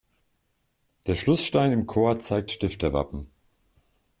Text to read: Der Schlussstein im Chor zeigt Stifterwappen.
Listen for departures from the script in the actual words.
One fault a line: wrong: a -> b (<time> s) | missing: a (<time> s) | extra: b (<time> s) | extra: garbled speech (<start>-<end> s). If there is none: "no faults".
no faults